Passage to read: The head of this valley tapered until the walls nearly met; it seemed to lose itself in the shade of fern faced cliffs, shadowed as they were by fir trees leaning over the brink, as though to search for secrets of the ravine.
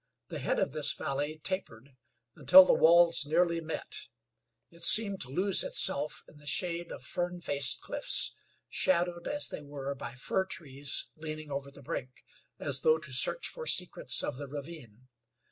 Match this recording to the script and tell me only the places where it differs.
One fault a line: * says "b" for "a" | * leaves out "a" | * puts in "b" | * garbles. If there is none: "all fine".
all fine